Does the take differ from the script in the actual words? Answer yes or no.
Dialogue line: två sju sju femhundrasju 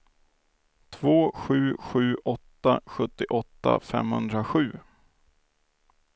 yes